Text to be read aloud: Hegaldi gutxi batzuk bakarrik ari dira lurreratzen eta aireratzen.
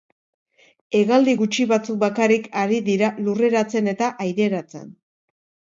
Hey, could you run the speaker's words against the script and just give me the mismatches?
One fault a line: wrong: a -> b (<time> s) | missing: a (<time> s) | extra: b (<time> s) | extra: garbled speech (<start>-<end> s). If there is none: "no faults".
no faults